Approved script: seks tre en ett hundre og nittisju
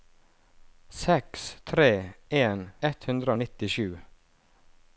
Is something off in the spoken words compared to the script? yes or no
no